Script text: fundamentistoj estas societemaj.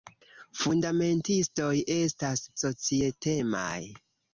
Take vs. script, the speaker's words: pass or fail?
pass